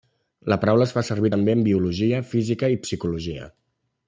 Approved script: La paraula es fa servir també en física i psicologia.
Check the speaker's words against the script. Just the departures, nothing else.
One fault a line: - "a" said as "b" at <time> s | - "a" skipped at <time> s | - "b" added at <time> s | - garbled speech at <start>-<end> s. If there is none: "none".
- "biologia" added at 1.7 s